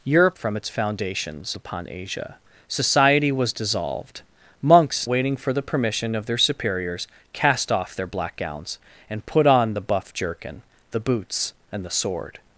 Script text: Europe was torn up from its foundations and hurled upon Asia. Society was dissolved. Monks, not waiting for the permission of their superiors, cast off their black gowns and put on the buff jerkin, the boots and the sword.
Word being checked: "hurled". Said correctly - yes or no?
no